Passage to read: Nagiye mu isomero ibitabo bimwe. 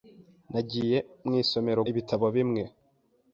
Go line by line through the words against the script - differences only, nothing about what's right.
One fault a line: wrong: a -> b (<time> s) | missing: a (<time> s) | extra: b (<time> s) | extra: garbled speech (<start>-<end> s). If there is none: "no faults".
no faults